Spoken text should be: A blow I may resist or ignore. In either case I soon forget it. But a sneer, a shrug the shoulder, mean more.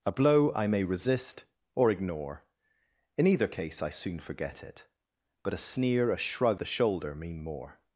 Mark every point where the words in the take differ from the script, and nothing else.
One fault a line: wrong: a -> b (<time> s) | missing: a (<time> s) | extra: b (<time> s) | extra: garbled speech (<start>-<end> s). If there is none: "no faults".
no faults